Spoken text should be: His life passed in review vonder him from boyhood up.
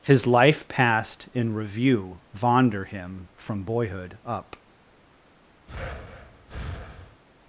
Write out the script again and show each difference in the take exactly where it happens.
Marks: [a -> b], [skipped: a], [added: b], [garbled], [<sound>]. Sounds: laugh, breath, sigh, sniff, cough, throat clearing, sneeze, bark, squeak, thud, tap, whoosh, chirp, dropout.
His life passed in review vonder him from boyhood up. [breath]